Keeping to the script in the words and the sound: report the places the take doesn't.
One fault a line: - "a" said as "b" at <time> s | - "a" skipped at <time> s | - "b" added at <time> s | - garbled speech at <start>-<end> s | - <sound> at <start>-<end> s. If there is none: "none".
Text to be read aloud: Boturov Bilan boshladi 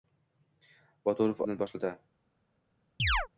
- chirp at 3.0-3.3 s